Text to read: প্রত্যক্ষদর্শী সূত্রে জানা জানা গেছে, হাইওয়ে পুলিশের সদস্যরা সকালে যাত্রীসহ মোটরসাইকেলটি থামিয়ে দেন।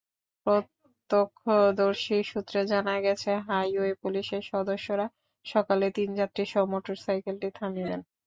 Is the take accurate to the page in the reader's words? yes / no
no